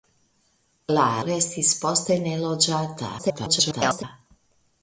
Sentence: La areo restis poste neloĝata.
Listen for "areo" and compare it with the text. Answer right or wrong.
wrong